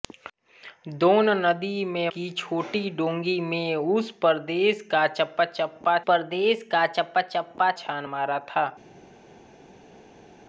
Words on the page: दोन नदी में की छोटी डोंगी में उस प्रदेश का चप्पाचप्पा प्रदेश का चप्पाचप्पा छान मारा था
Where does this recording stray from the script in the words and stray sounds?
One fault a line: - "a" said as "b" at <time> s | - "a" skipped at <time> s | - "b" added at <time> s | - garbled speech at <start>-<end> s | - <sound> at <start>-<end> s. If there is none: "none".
none